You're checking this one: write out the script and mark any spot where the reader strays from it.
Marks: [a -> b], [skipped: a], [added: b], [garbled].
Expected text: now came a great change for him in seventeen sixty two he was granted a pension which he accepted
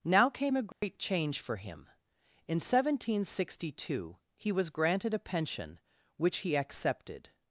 now came a great change for him in seventeen sixty two he was granted a pension which he accepted